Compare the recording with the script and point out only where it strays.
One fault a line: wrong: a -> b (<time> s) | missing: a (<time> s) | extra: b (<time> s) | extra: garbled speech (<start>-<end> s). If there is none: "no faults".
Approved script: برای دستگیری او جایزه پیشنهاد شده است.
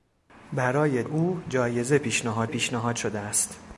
missing: دستگیری (1.0 s)
extra: پیشنهاد (2.5 s)